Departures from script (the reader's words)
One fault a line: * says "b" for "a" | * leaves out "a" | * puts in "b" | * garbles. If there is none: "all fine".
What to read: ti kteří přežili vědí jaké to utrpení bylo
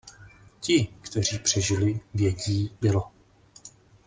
* leaves out "jaké to utrpení"